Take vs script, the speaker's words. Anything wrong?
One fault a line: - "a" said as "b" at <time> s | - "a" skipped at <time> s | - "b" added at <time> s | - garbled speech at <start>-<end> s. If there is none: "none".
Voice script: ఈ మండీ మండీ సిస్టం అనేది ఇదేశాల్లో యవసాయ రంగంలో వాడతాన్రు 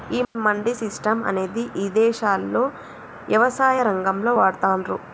- "మండీ" skipped at 0.7 s